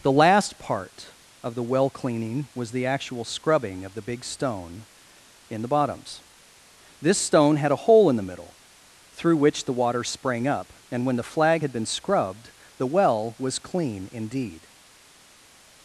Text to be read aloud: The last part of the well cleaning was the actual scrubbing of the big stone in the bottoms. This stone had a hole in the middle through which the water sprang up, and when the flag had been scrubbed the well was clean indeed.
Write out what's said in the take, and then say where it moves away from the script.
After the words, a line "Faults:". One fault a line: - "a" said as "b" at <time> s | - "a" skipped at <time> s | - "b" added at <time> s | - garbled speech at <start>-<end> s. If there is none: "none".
The last part of the well cleaning was the actual scrubbing of the big stone in the bottoms. This stone had a hole in the middle through which the water sprang up, and when the flag had been scrubbed the well was clean indeed.
Faults:
none